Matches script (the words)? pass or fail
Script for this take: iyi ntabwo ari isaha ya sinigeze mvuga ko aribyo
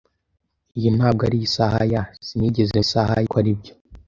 fail